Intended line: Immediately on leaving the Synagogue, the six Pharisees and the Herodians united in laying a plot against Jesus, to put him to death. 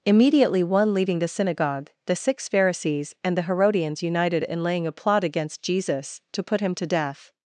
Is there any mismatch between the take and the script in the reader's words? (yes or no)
yes